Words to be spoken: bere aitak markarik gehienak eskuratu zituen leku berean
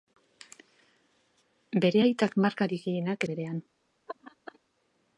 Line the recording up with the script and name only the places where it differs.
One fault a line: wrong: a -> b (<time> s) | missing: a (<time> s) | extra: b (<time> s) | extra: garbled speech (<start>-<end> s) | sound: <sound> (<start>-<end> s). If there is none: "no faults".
missing: eskuratu zituen leku (3.3 s)
sound: laugh (4.1-4.6 s)